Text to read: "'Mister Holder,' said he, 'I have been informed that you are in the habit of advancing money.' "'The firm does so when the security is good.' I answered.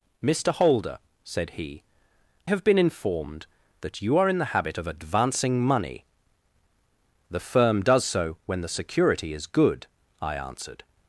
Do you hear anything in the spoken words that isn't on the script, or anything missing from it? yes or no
yes